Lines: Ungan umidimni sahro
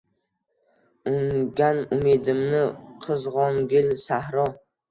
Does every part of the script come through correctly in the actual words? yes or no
no